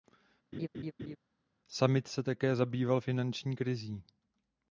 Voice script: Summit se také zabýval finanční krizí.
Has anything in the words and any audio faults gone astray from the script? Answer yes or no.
yes